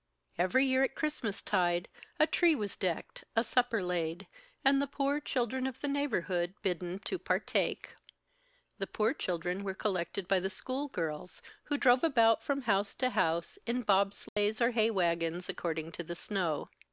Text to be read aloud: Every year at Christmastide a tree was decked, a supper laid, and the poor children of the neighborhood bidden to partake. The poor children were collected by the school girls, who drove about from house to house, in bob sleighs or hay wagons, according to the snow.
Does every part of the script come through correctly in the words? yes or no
yes